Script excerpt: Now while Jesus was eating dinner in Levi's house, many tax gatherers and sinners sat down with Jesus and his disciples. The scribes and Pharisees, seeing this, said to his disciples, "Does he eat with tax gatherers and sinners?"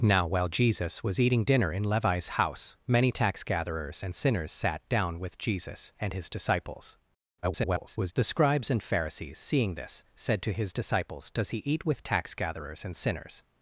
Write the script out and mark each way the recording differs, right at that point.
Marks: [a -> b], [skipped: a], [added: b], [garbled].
Now while Jesus was eating dinner in Levi's house, many tax gatherers and sinners sat down with Jesus and his disciples. [garbled] The scribes and Pharisees, seeing this, said to his disciples, "Does he eat with tax gatherers and sinners?"